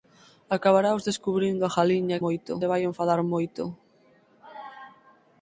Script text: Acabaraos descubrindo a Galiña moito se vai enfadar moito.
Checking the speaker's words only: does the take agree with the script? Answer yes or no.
yes